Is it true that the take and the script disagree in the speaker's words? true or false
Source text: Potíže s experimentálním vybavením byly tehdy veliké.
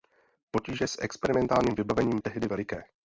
true